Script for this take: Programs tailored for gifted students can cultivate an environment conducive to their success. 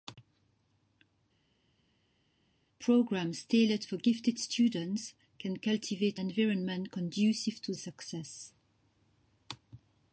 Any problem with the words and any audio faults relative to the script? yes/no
yes